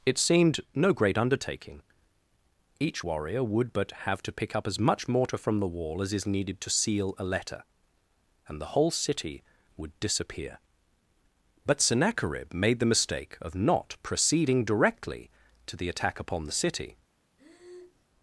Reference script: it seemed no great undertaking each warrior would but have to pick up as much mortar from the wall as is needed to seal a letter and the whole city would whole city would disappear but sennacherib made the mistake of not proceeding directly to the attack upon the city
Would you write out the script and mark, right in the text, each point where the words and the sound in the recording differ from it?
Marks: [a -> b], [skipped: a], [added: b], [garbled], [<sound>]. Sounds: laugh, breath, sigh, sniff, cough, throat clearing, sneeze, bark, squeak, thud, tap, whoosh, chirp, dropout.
it seemed no great undertaking each warrior would but have to pick up as much mortar from the wall as is needed to seal a letter and the whole city would [skipped: whole city would] disappear but sennacherib made the mistake of not proceeding directly to the attack upon the city [breath]